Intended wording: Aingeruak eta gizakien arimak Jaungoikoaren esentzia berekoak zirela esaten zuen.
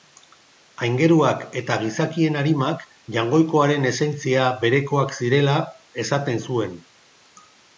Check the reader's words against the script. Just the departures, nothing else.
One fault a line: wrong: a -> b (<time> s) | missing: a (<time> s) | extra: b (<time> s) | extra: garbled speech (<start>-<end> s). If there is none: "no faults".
no faults